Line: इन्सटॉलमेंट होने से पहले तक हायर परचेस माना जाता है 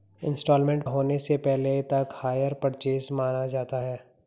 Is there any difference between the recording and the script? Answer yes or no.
no